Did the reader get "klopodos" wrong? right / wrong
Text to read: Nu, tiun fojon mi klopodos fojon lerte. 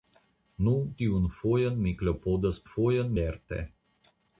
right